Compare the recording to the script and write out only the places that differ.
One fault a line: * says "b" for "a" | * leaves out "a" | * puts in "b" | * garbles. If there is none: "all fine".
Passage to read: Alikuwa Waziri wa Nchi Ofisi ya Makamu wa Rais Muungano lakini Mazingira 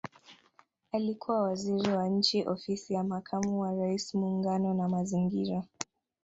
* says "na" for "lakini"